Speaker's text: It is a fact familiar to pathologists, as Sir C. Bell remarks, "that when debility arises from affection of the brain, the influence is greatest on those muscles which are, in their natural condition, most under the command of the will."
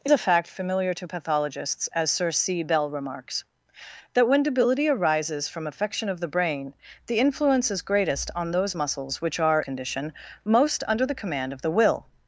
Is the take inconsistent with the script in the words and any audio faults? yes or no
yes